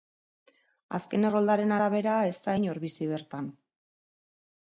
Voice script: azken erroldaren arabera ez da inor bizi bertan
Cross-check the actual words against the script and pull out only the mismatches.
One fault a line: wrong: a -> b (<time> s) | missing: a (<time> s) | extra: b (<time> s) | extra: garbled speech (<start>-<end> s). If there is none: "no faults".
no faults